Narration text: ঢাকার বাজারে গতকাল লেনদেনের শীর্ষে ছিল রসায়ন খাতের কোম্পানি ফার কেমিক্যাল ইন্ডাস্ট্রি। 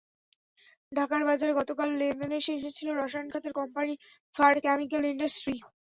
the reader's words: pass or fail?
pass